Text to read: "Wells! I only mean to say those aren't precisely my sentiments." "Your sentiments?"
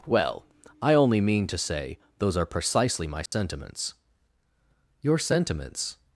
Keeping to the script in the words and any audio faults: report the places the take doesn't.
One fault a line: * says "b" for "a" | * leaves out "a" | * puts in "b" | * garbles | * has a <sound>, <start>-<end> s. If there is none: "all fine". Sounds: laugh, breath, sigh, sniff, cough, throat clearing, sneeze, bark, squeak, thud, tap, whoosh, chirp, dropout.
* says "Well" for "Wells"
* says "are" for "aren't"
* has a dropout, 3.3-3.3 s